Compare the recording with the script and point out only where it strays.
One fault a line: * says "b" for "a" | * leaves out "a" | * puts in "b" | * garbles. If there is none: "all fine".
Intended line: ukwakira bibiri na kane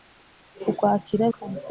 * leaves out "bibiri na"